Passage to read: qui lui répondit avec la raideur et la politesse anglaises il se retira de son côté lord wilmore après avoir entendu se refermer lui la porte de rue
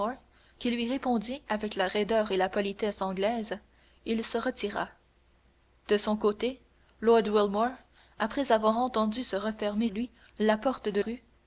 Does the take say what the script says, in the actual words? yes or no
yes